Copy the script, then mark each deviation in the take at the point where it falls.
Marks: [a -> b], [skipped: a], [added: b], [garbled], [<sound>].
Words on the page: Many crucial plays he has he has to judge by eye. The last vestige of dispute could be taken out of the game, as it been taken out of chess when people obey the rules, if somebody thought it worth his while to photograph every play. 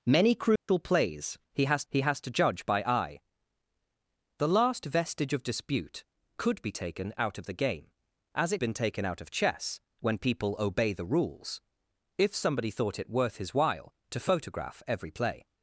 Many crucial [dropout] plays he has he has to judge by eye. The last vestige of dispute could be taken out of the game, as it been taken out of chess when people obey the rules, if somebody thought it worth his while to photograph every play.